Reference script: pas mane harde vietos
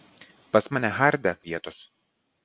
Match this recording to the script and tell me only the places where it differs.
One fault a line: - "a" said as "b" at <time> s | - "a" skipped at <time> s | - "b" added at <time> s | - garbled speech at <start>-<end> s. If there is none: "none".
none